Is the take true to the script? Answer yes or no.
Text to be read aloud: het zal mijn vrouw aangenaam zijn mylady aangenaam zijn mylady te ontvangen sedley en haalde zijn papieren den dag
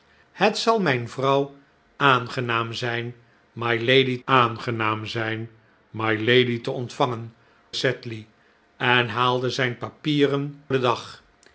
yes